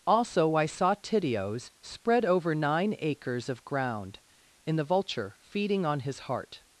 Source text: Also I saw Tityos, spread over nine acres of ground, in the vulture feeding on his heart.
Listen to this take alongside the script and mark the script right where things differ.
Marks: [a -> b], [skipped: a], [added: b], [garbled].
Also I saw Tityos, spread over nine acres of ground, in the vulture feeding on his heart.